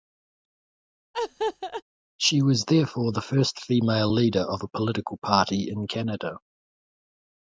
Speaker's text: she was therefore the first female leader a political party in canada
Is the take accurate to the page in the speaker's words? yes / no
no